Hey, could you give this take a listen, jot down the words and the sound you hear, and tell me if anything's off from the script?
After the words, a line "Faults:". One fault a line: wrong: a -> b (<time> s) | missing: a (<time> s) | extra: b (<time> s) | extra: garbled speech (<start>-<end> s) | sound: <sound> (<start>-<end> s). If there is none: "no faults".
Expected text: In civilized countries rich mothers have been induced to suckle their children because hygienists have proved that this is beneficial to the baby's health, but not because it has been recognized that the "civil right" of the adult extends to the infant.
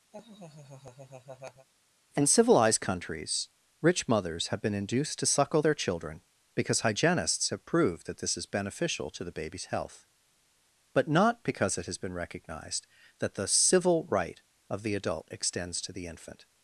In civilized countries rich mothers have been induced to suckle their children because hygienists have proved that this is beneficial to the baby's health, but not because it has been recognized that the "civil right" of the adult extends to the infant.
Faults:
sound: laugh (0.1-1.7 s)